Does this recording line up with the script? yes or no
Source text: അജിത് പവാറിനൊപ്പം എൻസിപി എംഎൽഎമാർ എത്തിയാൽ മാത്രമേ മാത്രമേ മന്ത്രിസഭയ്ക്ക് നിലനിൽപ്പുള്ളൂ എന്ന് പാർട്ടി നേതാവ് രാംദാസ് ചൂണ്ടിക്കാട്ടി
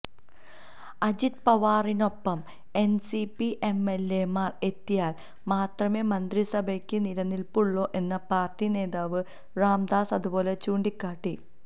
no